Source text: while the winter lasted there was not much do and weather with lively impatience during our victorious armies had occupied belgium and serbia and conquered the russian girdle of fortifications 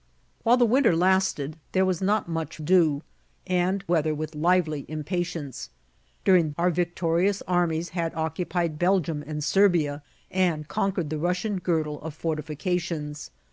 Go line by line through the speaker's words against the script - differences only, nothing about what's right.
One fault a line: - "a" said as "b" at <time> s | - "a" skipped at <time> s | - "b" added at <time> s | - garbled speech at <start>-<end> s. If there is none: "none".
none